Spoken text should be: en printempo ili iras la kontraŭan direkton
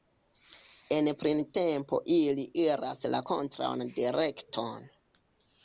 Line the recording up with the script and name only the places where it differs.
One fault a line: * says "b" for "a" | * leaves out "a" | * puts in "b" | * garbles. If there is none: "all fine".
all fine